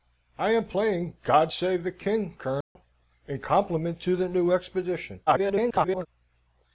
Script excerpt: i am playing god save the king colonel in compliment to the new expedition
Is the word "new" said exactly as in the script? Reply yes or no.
yes